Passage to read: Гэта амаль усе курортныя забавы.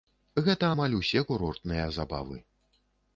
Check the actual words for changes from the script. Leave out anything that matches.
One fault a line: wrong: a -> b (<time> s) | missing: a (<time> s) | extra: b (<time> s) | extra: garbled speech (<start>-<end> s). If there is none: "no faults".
no faults